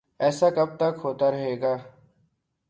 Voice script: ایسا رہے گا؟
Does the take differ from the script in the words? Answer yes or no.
yes